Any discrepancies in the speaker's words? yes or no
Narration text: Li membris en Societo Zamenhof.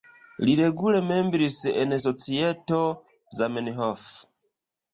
yes